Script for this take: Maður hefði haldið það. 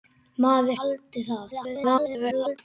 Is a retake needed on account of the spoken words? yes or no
yes